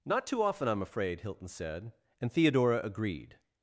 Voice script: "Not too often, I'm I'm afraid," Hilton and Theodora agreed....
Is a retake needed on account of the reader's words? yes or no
yes